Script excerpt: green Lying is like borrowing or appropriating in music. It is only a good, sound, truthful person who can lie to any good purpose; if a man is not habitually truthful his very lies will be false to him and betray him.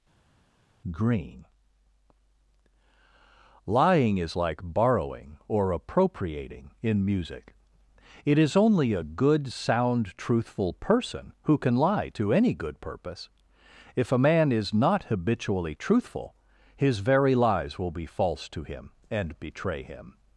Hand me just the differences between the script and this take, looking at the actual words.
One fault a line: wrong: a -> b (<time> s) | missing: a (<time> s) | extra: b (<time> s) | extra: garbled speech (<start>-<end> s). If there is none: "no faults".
no faults